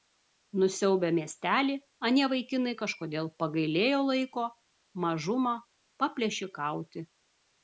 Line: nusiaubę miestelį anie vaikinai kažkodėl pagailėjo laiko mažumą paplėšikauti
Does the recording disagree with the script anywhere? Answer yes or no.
no